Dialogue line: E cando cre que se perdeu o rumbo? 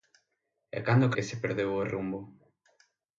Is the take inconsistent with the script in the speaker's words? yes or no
yes